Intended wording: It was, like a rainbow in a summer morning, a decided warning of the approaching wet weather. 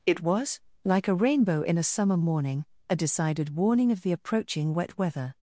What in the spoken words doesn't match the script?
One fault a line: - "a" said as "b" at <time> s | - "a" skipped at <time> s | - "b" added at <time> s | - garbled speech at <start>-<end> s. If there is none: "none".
none